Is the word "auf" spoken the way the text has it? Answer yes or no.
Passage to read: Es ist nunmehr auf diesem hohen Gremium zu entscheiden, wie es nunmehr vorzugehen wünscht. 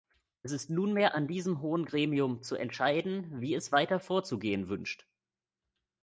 no